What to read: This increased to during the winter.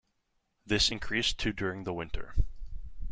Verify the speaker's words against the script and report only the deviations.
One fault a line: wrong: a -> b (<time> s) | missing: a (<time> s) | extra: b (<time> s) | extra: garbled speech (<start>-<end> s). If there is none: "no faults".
no faults